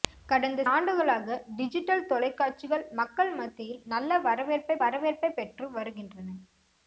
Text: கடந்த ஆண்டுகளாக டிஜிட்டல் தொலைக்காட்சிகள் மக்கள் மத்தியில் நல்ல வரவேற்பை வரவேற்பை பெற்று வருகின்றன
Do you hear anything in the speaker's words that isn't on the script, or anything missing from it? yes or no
no